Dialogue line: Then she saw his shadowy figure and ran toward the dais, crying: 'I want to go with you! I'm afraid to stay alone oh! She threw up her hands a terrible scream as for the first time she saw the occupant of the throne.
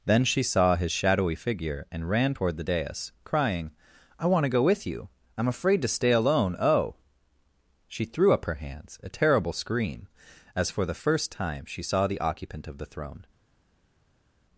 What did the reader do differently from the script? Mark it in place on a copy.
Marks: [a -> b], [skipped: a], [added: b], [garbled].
Then she saw his shadowy figure and ran toward the dais, crying: 'I want to go with you! I'm afraid to stay alone oh! She threw up her hands a terrible scream as for the first time she saw the occupant of the throne.